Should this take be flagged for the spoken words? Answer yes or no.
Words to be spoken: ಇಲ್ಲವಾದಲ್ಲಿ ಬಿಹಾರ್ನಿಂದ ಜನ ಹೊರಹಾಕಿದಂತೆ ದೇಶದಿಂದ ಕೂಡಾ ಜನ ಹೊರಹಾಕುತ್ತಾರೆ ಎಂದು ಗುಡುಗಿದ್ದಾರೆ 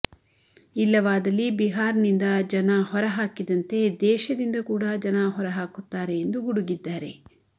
no